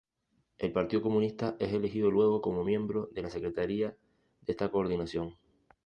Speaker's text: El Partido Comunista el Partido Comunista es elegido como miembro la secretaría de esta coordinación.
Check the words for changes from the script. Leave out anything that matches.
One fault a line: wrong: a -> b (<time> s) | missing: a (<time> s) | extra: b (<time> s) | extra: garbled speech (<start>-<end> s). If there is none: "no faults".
missing: el Partido Comunista (1.6 s)
extra: luego (2.1 s)
extra: de (3.1 s)